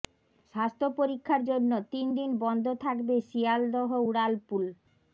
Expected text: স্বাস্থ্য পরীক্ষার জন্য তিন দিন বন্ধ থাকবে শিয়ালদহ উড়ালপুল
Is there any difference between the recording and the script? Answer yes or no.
no